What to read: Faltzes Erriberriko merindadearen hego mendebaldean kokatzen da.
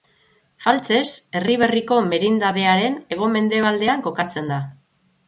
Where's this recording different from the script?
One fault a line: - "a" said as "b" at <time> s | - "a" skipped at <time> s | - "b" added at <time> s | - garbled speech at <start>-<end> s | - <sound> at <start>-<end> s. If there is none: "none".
none